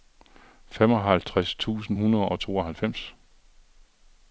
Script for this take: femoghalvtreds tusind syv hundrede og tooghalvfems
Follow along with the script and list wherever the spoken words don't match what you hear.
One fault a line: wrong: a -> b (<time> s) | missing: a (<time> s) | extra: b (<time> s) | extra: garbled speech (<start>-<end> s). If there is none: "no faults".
missing: syv (2.0 s)